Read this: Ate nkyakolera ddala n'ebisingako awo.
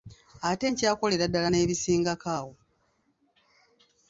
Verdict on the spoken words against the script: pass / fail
pass